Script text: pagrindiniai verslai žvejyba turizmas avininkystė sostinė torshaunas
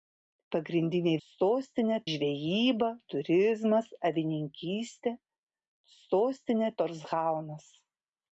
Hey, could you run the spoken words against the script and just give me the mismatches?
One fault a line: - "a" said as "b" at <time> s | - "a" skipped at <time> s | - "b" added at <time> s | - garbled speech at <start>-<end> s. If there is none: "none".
- "verslai" said as "sostinė" at 1.3 s